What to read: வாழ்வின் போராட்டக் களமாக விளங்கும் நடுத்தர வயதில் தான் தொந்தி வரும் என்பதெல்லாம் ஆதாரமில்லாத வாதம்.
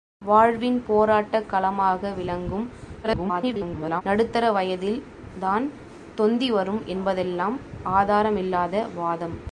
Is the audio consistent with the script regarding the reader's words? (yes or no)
no